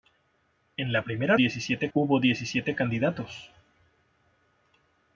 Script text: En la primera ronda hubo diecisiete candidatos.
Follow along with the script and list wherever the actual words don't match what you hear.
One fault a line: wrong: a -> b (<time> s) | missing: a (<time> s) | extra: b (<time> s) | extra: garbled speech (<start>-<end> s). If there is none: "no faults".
wrong: ronda -> diecisiete (1.4 s)